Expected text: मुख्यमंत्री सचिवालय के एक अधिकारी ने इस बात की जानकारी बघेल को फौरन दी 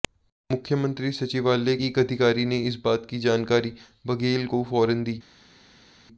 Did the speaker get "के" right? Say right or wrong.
wrong